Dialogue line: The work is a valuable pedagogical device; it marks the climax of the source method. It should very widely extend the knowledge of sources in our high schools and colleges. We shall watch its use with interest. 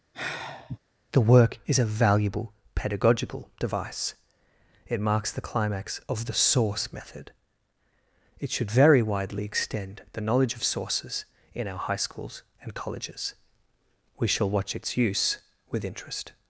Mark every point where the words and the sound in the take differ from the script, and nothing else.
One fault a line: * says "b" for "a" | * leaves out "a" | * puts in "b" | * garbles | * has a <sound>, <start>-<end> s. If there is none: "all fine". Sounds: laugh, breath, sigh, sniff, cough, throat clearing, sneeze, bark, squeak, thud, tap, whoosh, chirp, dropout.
* has a sigh, 0.1-0.8 s